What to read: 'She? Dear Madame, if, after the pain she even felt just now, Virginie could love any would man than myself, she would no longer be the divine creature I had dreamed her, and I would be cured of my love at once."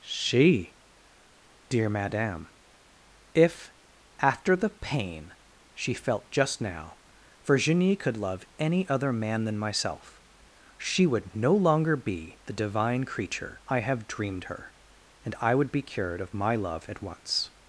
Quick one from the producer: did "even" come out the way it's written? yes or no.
no